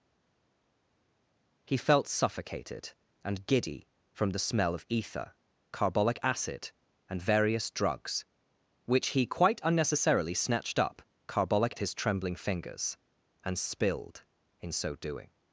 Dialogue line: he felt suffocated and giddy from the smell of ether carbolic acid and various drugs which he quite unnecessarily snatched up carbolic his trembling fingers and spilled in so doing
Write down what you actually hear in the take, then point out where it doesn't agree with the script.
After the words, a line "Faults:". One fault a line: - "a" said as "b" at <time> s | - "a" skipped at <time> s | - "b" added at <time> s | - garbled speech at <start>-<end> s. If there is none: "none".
he felt suffocated and giddy from the smell of ether carbolic acid and various drugs which he quite unnecessarily snatched up carbolic his trembling fingers and spilled in so doing
Faults:
none